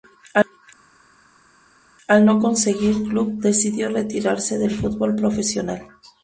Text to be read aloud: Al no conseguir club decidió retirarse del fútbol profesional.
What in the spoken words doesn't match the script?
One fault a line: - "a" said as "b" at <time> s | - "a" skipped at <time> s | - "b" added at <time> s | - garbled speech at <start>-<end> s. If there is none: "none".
none